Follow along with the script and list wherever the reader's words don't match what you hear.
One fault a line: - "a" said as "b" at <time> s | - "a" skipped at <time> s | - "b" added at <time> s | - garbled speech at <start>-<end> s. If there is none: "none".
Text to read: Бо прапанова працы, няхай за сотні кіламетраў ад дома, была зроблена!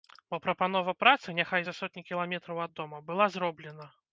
none